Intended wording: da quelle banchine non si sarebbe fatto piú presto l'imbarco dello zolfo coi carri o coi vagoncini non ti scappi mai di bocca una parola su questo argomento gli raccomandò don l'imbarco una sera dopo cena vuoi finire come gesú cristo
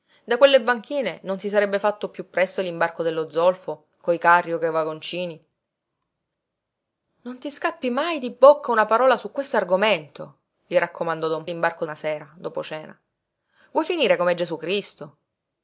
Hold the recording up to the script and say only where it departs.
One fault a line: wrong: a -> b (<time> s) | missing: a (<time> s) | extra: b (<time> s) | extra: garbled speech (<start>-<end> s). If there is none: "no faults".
no faults